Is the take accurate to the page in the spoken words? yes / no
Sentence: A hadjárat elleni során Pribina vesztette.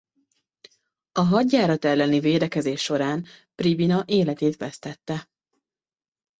no